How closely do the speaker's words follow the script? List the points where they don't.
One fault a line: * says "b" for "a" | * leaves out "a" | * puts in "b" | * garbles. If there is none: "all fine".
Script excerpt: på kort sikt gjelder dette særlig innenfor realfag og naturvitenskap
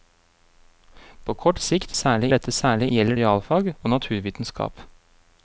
* says "særlig" for "gjelder"
* says "gjelder" for "innenfor"